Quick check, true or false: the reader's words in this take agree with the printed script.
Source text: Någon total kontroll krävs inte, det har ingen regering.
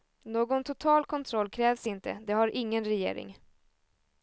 true